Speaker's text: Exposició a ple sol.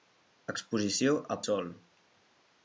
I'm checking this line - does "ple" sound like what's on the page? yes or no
no